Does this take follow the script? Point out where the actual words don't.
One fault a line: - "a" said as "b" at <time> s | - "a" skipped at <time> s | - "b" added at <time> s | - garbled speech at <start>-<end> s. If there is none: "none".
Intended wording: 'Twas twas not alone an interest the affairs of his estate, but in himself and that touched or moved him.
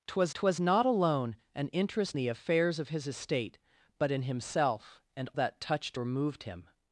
none